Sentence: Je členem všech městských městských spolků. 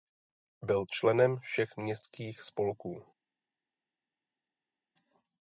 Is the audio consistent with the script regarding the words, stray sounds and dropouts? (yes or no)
no